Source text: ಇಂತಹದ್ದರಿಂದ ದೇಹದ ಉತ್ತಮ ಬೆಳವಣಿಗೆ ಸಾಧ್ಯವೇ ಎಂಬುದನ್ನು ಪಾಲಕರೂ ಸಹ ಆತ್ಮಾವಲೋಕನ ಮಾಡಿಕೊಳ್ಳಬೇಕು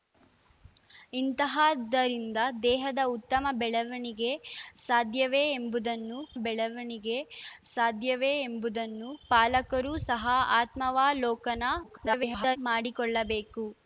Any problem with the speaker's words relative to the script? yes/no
yes